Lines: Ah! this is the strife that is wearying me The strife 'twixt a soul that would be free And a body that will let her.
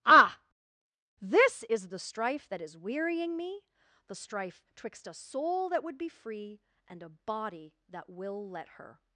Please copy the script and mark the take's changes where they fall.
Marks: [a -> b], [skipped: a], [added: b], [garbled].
Ah! this is the strife that is wearying me The strife 'twixt a soul that would be free And a body that will let her.